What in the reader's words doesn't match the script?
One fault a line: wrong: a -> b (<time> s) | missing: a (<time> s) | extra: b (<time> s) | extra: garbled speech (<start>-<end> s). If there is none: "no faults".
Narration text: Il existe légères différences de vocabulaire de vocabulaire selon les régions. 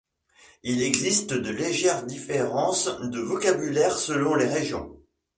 extra: de (1.3 s)
missing: de vocabulaire (4.0 s)